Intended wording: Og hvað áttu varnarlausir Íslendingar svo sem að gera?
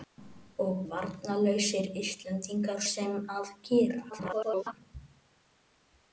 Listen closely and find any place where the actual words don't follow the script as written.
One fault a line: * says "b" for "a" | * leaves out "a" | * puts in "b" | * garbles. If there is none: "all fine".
* leaves out "hvað áttu"
* leaves out "svo"
* garbles